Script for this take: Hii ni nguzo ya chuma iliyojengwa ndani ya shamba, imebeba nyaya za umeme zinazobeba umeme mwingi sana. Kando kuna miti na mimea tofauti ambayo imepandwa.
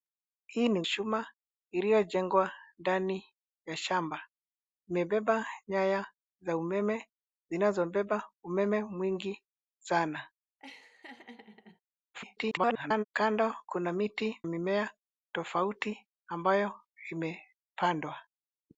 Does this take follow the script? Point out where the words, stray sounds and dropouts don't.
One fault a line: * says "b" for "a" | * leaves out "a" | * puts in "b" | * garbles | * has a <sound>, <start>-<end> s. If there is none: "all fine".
* leaves out "nguzo ya"
* has a laugh, 10.6-11.8 s
* garbles
* leaves out "na"